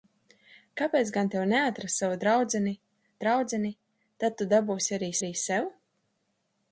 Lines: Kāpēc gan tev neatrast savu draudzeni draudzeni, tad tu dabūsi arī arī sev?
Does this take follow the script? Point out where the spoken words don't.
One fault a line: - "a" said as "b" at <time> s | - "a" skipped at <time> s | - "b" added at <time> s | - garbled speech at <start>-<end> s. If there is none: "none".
none